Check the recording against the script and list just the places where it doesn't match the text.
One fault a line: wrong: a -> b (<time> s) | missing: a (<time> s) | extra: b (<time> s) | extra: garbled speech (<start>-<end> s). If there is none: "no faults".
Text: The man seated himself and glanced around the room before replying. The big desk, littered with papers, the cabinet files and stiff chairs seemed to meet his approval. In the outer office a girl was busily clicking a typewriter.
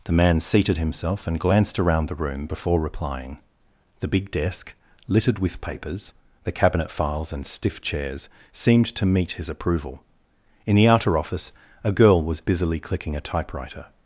no faults